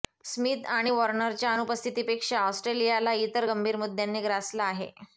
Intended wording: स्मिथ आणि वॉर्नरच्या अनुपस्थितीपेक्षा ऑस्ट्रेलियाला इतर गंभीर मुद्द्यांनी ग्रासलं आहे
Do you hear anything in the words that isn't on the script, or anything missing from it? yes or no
no